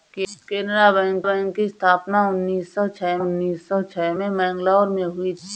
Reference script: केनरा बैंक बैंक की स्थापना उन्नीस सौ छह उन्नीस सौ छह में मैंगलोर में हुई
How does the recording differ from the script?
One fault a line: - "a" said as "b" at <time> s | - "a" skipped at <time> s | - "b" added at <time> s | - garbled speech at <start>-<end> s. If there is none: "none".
none